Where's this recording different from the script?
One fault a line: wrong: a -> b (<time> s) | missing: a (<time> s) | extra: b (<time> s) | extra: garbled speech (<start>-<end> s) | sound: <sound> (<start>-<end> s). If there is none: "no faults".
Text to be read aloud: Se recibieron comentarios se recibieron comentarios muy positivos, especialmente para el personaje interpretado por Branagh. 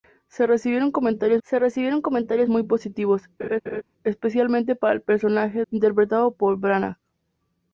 sound: laugh (3.4-3.8 s)